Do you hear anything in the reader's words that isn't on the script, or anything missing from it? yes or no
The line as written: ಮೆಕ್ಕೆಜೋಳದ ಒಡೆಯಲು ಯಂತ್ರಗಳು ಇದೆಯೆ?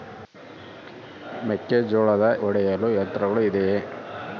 no